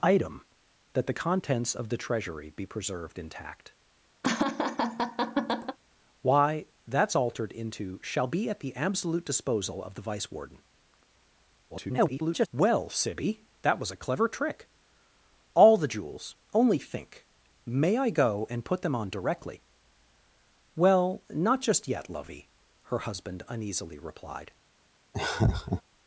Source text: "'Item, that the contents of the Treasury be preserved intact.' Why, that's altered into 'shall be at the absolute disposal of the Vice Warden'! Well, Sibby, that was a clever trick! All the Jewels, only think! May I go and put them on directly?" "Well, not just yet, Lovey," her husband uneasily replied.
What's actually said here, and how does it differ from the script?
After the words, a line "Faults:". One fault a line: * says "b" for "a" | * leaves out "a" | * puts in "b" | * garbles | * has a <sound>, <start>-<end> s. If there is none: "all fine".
"'Item, that the contents of the Treasury be preserved intact.' Why, that's altered into 'shall be at the absolute disposal of the Vice Warden'! [garbled] Well, Sibby, that was a clever trick! All the Jewels, only think! May I go and put them on directly?" "Well, not just yet, Lovey," her husband uneasily replied.
Faults:
* has a laugh, 4.2-5.8 s
* garbles
* has a laugh, 25.1-25.8 s